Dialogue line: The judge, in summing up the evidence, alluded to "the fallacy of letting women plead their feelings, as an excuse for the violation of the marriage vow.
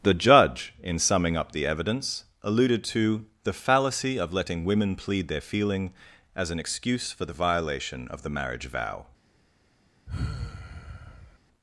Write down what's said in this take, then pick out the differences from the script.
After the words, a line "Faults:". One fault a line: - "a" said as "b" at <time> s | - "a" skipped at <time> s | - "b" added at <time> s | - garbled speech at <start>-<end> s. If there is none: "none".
The judge, in summing up the evidence, alluded to "the fallacy of letting women plead their feeling, as an excuse for the violation of the marriage vow.
Faults:
- "feelings" said as "feeling" at 5.4 s